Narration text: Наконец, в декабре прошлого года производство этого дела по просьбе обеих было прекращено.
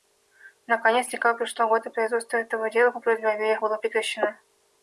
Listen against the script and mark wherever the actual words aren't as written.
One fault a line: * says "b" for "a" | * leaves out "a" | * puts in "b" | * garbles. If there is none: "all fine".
all fine